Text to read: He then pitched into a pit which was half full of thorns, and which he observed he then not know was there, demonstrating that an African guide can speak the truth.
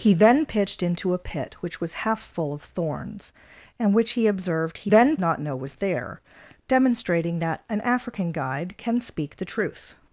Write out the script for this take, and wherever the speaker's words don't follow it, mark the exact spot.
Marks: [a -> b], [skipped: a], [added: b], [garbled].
He then pitched into a pit which was half full of thorns, and which he observed he then not know was there, demonstrating that an African guide can speak the truth.